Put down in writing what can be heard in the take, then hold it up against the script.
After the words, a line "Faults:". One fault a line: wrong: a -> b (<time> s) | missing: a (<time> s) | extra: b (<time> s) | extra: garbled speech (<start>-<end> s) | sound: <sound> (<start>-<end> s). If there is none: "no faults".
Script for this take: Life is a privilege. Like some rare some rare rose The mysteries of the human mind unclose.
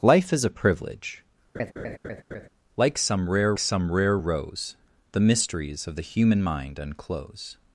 Life is a privilege. Like some rare some rare rose The mysteries of the human mind unclose.
Faults:
sound: laugh (1.5-2.5 s)